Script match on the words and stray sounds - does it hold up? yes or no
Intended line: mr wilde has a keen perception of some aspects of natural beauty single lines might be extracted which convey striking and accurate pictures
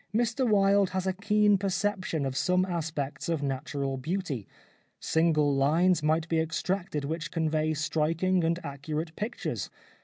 yes